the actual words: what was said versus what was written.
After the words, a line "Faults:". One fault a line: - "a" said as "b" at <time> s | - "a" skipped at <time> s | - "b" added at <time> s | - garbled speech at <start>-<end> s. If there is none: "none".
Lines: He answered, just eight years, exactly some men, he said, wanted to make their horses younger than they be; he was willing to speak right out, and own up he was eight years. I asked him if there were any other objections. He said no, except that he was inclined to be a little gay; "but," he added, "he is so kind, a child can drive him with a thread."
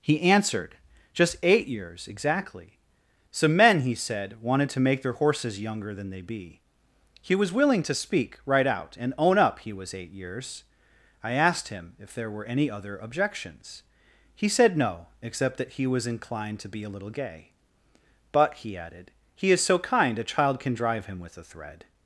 He answered, just eight years, exactly some men, he said, wanted to make their horses younger than they be; he was willing to speak right out, and own up he was eight years. I asked him if there were any other objections. He said no, except that he was inclined to be a little gay; "but," he added, "he is so kind, a child can drive him with a thread."
Faults:
none